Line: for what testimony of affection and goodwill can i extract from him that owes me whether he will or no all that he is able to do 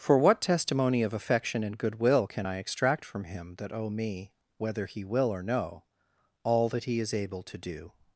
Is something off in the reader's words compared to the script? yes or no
yes